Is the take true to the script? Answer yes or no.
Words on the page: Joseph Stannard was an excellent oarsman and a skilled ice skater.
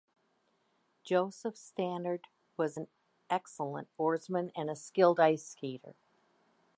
yes